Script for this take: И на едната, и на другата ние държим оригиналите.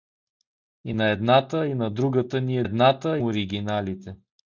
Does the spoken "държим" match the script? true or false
false